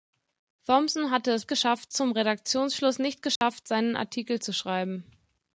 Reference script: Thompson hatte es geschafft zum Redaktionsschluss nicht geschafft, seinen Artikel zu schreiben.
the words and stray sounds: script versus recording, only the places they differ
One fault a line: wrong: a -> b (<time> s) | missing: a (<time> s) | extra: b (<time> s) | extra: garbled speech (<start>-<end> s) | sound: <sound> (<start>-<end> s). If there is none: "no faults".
sound: dropout (3.4-3.4 s)